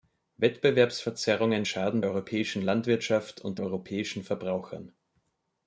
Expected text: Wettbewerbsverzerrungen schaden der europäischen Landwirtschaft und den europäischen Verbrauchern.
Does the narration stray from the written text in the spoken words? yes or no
yes